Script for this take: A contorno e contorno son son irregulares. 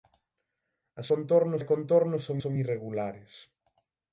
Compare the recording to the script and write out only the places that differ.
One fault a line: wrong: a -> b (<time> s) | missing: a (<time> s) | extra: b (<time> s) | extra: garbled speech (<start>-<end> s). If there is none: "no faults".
no faults